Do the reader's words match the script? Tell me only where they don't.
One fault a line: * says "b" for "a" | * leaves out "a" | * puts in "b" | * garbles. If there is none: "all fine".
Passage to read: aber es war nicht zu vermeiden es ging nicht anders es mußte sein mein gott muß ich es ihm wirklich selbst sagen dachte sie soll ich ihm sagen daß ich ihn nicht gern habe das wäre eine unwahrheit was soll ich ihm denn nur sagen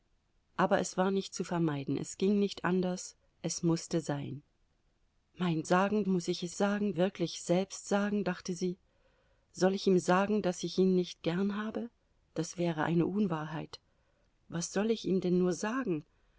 * says "sagen" for "gott"
* says "sagen" for "ihm"